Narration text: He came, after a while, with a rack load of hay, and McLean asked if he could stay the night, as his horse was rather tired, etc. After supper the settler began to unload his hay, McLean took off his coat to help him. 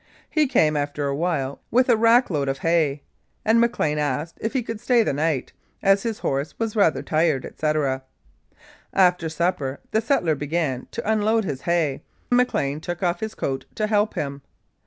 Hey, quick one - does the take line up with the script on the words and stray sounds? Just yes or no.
yes